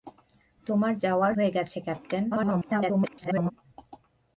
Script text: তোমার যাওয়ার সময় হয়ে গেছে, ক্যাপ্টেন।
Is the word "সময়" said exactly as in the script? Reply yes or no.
no